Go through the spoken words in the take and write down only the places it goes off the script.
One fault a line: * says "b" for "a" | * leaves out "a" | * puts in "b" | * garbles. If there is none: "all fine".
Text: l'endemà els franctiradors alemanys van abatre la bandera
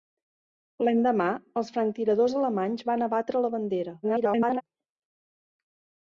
* garbles